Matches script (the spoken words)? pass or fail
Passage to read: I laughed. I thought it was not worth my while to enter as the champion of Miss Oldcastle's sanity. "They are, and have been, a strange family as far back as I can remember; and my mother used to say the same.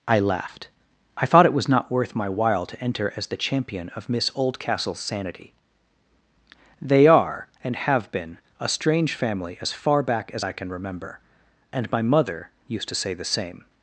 pass